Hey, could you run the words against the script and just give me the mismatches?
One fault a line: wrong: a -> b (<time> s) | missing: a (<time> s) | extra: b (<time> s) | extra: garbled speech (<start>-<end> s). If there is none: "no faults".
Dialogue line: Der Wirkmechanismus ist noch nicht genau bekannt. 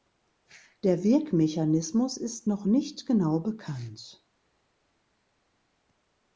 no faults